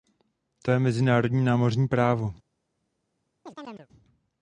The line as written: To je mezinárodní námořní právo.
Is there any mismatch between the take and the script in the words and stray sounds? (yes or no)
yes